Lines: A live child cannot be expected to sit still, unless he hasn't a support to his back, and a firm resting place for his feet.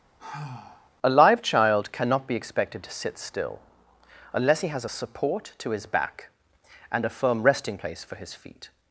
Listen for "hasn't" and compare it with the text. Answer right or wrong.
wrong